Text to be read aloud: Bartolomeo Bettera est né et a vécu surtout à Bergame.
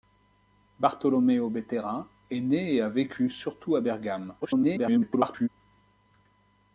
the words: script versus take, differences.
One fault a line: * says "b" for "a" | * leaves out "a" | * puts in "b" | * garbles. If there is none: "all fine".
* garbles